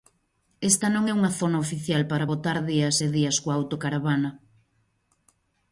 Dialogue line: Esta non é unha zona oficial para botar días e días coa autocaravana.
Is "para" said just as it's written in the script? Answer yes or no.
yes